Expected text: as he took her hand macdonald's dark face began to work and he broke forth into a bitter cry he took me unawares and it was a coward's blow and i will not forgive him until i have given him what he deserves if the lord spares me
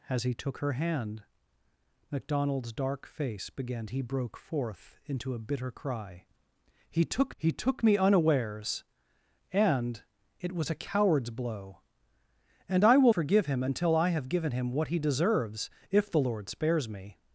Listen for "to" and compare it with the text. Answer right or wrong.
wrong